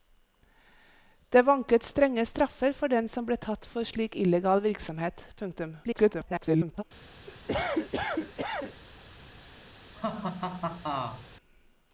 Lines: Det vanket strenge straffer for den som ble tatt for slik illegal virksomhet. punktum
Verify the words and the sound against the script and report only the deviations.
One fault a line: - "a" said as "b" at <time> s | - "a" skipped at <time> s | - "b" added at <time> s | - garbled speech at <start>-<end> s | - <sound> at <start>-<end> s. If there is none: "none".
- garbled speech at 5.8-6.8 s
- cough at 7.3-8.8 s
- laugh at 9.9-11.3 s